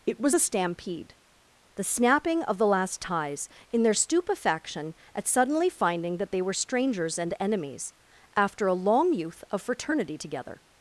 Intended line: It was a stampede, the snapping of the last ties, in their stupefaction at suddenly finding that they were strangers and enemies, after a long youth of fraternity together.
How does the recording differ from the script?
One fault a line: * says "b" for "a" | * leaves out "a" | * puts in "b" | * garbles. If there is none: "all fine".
all fine